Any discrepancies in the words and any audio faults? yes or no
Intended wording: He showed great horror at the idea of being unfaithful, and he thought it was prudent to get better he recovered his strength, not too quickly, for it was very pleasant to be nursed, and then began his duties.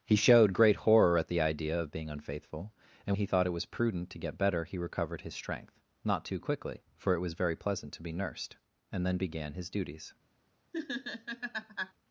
yes